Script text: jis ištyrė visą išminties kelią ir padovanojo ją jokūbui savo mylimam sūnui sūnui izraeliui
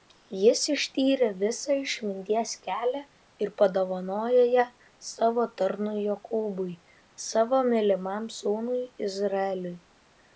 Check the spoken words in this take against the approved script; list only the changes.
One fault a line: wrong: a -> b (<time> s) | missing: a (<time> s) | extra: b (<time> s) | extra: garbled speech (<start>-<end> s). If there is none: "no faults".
extra: savo tarnui (5.1 s)
missing: sūnui (8.8 s)